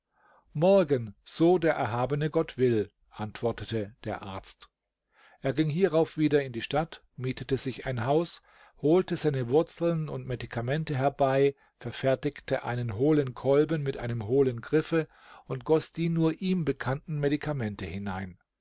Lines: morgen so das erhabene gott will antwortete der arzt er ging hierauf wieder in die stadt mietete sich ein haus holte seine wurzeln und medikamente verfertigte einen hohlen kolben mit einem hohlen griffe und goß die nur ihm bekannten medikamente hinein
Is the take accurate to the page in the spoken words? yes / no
no